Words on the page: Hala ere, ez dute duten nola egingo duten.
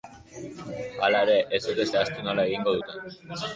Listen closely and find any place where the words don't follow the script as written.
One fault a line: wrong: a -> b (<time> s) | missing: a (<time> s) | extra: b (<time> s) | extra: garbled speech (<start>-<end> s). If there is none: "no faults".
wrong: duten -> zehaztu (1.9 s)